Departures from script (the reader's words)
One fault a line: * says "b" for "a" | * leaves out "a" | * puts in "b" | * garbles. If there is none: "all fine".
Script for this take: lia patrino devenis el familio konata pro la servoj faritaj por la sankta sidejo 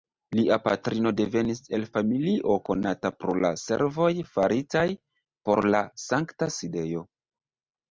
all fine